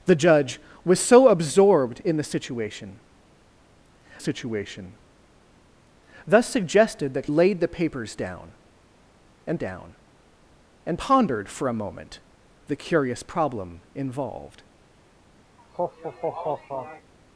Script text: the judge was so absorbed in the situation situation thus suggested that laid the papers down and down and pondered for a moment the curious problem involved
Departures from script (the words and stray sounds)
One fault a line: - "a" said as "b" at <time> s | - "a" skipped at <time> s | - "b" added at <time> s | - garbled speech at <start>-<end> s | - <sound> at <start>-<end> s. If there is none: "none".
- laugh at 15.6-17.1 s